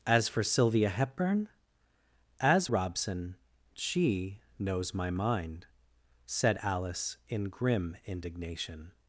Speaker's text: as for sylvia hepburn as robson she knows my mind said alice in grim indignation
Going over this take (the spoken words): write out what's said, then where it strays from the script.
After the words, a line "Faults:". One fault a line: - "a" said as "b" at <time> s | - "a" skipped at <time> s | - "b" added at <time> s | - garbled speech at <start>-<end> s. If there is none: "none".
as for sylvia hepburn as robson she knows my mind said alice in grim indignation
Faults:
none